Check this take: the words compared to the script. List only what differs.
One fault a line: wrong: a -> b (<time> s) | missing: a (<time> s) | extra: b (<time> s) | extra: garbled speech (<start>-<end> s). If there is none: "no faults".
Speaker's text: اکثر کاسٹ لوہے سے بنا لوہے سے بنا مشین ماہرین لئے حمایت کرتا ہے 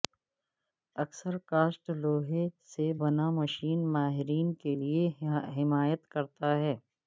missing: لوہے سے بنا (3.3 s)
extra: کے (4.6 s)